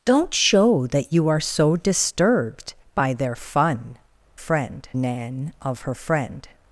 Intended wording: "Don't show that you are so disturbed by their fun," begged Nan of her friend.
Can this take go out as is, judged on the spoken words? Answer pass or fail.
fail